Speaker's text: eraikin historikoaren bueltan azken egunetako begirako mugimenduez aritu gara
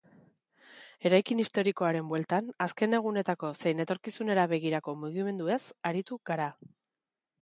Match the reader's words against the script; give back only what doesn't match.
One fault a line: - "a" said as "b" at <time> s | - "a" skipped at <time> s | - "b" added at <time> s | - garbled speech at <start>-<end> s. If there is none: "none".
- "zein etorkizunera" added at 3.6 s